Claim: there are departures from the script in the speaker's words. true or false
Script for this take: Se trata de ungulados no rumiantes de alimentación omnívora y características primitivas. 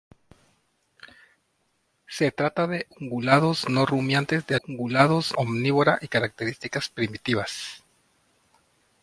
true